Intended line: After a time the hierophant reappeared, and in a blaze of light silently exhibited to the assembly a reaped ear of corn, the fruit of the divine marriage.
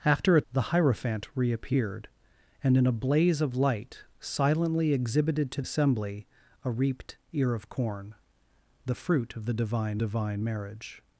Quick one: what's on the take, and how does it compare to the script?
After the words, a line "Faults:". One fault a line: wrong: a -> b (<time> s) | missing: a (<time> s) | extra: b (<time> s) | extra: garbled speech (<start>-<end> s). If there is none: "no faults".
After a the hierophant reappeared, and in a blaze of light silently exhibited to assembly a reaped ear of corn, the fruit of the divine divine marriage.
Faults:
missing: time (0.4 s)
missing: the (5.6 s)
extra: divine (10.0 s)